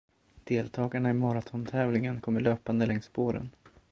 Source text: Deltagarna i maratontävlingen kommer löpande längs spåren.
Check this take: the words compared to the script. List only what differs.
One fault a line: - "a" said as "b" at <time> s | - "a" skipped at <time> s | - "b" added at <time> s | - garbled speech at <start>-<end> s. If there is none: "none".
none